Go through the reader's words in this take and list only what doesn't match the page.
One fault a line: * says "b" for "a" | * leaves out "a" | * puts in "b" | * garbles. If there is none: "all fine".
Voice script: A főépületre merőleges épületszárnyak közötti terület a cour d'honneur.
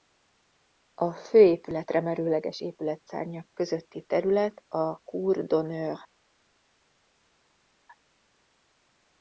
all fine